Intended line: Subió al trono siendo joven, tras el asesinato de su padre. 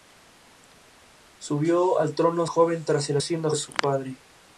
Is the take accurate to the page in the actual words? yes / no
no